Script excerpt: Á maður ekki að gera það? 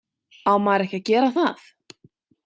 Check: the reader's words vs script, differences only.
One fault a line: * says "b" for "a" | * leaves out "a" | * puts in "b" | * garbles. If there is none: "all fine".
all fine